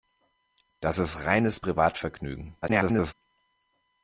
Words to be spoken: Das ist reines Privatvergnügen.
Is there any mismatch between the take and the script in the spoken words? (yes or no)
yes